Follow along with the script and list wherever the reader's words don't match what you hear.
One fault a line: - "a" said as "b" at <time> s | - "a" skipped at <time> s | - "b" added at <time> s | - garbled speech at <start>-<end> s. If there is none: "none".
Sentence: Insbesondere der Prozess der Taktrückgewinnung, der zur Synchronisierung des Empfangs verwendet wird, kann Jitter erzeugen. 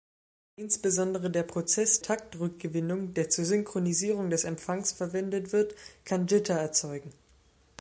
- "der" skipped at 2.0 s